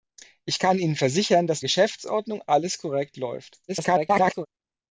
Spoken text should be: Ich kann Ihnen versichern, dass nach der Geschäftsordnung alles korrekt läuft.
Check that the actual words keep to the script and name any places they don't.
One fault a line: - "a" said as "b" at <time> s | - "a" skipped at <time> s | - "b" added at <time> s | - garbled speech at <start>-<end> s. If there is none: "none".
- "nach der" skipped at 1.6 s
- garbled speech at 3.7-4.5 s